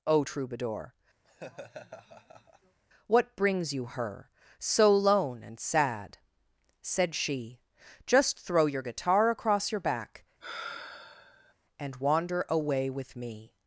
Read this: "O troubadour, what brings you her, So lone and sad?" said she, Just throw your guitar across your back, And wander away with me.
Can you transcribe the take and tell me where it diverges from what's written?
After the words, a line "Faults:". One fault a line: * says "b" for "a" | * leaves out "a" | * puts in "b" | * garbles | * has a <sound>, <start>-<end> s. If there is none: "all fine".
"O troubadour, what brings you her, So lone and sad?" said she, Just throw your guitar across your back, And wander away with me.
Faults:
* has a laugh, 1.2-2.8 s
* has a sigh, 10.4-11.5 s